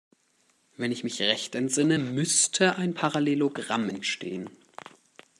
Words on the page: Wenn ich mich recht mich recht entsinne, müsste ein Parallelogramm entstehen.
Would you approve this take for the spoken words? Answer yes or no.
no